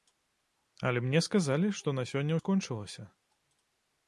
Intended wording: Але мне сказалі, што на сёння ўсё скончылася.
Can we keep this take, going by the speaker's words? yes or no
no